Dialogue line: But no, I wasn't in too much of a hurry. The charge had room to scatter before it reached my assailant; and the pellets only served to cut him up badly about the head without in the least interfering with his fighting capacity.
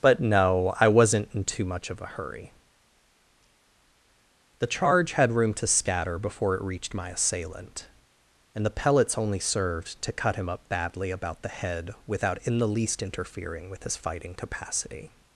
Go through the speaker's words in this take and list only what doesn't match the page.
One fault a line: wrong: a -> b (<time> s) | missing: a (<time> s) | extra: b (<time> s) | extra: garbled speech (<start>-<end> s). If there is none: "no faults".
no faults